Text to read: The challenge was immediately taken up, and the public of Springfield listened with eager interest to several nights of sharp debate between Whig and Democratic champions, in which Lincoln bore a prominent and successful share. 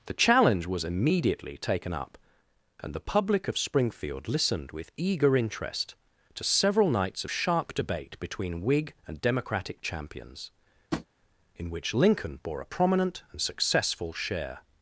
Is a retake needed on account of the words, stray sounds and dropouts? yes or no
yes